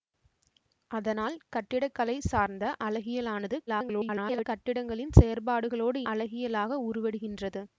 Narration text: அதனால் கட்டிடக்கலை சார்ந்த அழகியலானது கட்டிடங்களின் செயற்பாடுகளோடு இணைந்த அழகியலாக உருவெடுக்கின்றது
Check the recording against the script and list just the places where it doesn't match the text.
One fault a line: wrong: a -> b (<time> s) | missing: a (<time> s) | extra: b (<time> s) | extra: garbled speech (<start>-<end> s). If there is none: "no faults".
extra: garbled speech (3.7-4.5 s)
missing: இணைந்த (6.0 s)